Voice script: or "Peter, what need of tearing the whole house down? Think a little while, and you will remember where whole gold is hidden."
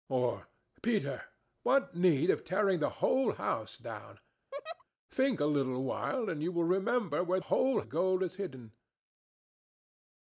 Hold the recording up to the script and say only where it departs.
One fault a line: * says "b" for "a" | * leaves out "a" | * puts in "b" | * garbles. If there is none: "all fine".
all fine